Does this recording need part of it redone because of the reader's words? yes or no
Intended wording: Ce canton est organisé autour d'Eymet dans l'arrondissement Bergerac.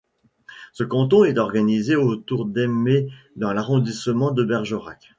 yes